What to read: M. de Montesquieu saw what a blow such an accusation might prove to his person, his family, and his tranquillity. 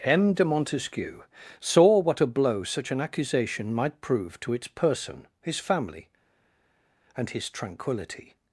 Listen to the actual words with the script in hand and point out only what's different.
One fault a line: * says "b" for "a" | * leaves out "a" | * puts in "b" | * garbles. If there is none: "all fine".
* says "its" for "his"